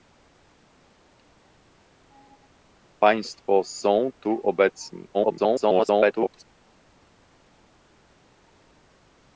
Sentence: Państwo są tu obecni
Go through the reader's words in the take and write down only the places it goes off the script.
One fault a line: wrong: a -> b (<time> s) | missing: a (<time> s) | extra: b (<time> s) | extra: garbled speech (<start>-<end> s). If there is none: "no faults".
extra: garbled speech (5.1-6.4 s)